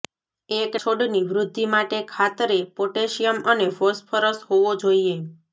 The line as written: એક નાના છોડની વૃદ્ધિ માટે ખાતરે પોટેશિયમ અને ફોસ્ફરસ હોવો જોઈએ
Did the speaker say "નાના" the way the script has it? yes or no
no